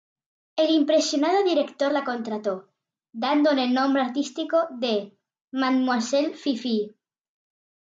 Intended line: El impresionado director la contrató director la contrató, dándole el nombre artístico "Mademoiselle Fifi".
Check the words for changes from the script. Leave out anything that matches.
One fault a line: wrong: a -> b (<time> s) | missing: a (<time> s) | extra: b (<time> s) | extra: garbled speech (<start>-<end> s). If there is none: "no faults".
missing: director la contrató (2.7 s)
extra: de (4.7 s)